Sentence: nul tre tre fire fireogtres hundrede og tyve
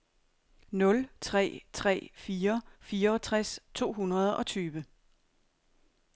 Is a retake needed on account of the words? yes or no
yes